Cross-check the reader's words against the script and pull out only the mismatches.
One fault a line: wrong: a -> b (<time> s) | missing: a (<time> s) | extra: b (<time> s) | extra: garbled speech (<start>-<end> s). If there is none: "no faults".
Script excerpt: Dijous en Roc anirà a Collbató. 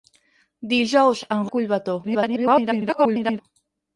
missing: Roc anirà (1.4 s)
extra: garbled speech (2.0-3.4 s)